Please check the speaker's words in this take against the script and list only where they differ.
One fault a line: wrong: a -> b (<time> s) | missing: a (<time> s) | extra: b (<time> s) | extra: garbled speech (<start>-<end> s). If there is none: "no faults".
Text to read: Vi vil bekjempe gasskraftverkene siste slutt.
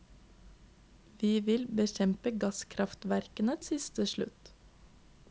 no faults